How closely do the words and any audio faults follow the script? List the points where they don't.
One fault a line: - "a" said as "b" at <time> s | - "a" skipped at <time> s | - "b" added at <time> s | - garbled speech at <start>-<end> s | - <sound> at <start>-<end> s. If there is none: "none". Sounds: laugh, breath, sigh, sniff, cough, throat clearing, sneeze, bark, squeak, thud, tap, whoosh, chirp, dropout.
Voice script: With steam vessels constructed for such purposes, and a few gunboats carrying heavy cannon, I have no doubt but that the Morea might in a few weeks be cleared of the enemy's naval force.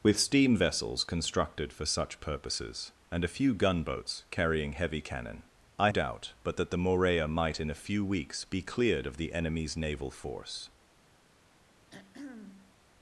- "have no" skipped at 5.9 s
- throat clearing at 11.9-12.8 s